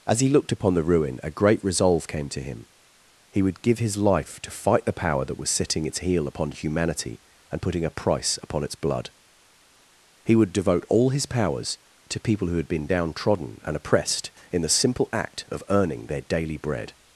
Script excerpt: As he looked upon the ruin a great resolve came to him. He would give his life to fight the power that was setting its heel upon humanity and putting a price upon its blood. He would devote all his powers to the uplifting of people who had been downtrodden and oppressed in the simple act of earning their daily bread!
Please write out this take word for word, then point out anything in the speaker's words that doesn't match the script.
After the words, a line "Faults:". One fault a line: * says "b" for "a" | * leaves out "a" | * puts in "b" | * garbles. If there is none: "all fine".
As he looked upon the ruin a great resolve came to him. He would give his life to fight the power that was setting its heel upon humanity and putting a price upon its blood. He would devote all his powers to people who had been downtrodden and oppressed in the simple act of earning their daily bread!
Faults:
* leaves out "the uplifting of"